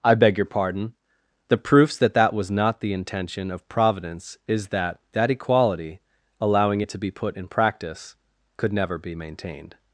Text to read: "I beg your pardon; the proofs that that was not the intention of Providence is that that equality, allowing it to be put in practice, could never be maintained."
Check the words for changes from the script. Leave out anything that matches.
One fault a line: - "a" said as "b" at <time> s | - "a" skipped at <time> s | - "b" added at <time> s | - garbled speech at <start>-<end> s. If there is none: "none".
none